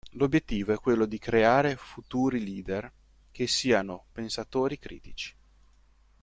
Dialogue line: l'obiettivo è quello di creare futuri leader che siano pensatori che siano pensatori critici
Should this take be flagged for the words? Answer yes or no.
yes